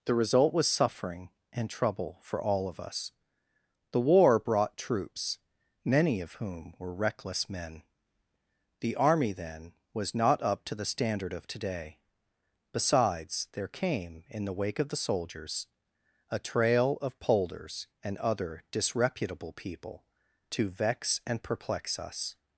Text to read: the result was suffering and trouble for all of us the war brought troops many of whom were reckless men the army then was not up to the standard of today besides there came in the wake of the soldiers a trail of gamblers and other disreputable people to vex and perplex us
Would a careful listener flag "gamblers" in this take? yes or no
yes